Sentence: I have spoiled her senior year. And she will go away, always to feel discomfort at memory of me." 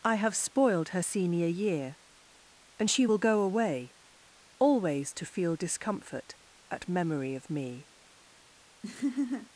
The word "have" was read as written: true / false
true